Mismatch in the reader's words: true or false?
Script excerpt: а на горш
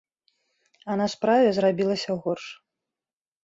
true